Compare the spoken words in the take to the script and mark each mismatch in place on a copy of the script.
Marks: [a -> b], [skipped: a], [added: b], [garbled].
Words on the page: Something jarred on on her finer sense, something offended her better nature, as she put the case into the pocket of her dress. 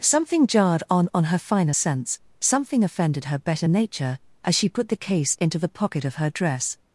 Something jarred on on her finer sense, something offended her better nature, as she put the case into the pocket of her dress.